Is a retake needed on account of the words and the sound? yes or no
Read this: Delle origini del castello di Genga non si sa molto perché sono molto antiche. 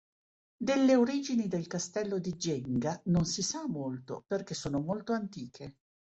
no